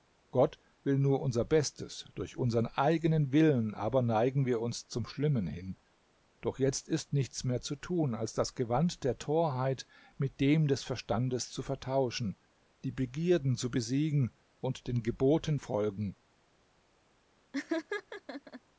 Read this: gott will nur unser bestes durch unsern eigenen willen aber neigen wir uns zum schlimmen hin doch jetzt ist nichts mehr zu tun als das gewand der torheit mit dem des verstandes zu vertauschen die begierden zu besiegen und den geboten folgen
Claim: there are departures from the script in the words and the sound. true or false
true